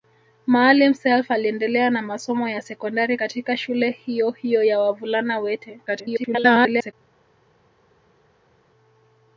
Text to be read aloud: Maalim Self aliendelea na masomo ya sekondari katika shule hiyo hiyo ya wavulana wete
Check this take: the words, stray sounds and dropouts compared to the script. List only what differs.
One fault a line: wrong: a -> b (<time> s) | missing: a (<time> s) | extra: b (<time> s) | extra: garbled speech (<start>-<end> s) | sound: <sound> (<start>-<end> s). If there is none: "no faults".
extra: garbled speech (5.9-6.9 s)